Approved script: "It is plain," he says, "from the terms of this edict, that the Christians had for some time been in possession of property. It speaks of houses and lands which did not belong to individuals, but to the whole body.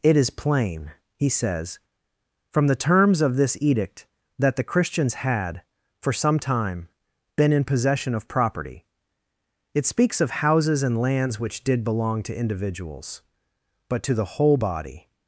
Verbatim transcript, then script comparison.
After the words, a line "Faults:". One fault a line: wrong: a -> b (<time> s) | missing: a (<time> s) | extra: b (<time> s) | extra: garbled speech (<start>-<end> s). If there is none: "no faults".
"It is plain," he says, "from the terms of this edict, that the Christians had for some time been in possession of property. It speaks of houses and lands which did belong to individuals, but to the whole body.
Faults:
missing: not (11.8 s)